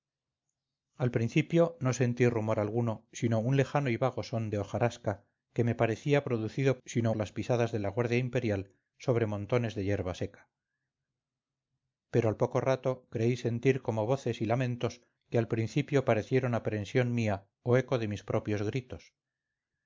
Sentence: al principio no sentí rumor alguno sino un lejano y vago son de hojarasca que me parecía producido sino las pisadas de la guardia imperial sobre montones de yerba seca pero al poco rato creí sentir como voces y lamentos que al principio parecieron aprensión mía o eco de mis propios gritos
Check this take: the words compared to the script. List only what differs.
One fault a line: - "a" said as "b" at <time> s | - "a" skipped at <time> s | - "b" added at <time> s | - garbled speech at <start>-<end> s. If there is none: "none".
none